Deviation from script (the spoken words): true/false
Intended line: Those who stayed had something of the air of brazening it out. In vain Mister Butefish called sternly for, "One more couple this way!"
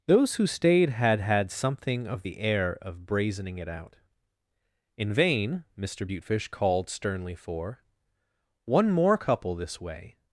true